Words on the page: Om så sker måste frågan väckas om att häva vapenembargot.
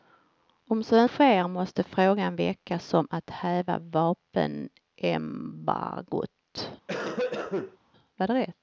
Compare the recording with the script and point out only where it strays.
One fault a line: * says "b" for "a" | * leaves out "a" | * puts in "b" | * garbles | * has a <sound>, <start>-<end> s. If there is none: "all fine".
* has a cough, 6.9-7.8 s